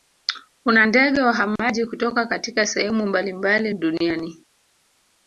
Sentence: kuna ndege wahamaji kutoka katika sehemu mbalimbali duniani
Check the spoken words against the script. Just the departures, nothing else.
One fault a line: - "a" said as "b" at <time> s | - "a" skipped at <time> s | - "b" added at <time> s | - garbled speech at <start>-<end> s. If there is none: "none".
none